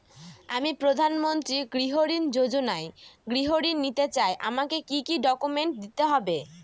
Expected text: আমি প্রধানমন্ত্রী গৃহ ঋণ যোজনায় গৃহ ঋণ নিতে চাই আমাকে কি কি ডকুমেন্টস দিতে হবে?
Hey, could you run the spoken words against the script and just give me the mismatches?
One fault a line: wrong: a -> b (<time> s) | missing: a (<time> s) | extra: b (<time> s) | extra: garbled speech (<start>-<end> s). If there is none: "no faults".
no faults